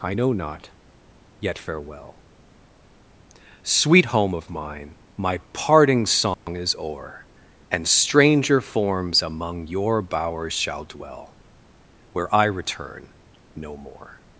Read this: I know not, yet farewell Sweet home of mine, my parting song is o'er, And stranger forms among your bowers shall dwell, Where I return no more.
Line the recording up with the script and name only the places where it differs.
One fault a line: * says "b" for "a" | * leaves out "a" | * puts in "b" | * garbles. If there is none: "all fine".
all fine